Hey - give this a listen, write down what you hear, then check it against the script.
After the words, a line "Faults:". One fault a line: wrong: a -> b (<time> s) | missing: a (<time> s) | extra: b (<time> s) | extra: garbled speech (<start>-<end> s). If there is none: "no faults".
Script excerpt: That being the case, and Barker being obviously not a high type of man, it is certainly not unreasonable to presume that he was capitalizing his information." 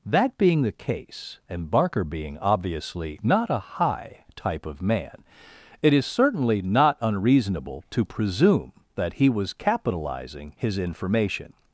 That being the case, and Barker being obviously not a high type of man, it is certainly not unreasonable to presume that he was capitalizing his information."
Faults:
no faults